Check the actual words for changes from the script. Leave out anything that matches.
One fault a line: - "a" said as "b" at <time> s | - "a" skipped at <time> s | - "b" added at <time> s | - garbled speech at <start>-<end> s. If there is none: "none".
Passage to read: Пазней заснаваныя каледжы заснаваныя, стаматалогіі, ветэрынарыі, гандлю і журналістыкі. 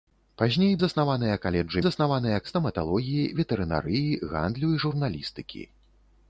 none